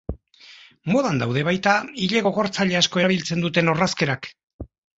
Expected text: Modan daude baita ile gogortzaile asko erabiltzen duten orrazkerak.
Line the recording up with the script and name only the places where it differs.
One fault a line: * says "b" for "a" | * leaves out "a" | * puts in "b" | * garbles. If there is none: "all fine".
all fine